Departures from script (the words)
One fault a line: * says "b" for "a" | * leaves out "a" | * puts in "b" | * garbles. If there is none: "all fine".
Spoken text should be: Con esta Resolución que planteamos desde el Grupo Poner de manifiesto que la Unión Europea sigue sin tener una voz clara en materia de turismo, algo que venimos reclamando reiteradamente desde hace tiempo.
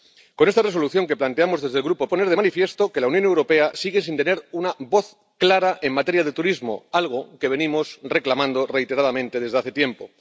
all fine